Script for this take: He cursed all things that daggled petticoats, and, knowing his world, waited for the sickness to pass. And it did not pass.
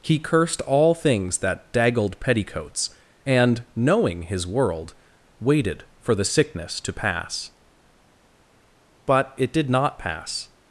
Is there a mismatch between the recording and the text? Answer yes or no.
yes